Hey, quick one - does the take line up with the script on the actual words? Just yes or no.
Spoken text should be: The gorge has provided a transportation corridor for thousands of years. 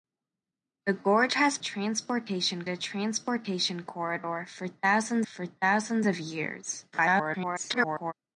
no